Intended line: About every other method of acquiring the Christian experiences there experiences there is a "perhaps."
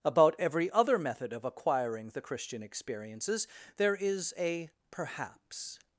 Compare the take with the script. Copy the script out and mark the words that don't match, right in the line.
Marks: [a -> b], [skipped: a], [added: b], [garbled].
About every other method of acquiring the Christian experiences there [skipped: experiences there] is a "perhaps."